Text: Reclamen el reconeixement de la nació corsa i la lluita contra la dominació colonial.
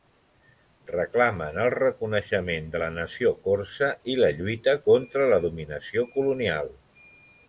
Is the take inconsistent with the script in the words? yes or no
no